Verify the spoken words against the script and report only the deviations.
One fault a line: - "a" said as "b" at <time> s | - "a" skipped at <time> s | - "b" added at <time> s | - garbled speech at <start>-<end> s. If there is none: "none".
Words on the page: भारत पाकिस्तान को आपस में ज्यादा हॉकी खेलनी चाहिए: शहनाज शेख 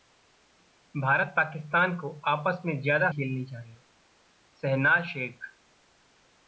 - "हॉकी" skipped at 3.1 s